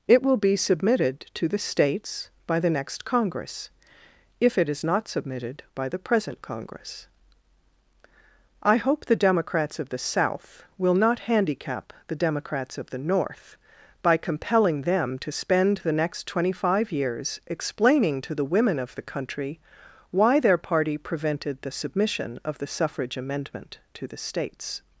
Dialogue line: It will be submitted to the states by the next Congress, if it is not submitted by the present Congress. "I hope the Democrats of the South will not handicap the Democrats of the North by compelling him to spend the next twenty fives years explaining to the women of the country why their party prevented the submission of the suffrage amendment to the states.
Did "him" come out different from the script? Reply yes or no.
yes